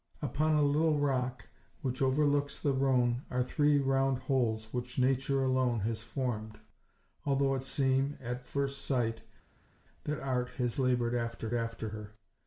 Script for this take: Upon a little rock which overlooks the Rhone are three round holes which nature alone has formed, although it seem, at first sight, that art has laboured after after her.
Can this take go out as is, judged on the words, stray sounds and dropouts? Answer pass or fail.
pass